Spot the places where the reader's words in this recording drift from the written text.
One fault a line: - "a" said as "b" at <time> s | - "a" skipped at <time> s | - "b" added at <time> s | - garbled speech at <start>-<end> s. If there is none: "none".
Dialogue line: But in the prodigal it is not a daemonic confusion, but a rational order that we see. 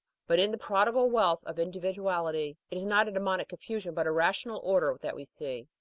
- "wealth of individuality" added at 1.1 s